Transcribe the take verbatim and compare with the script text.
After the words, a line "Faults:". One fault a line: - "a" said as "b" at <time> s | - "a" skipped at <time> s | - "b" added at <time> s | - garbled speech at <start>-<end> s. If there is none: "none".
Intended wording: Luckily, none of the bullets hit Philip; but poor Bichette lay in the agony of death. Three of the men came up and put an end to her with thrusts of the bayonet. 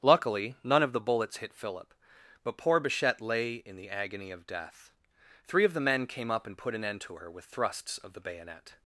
Luckily, none of the bullets hit Philip; but poor Bichette lay in the agony of death. Three of the men came up and put an end to her with thrusts of the bayonet.
Faults:
none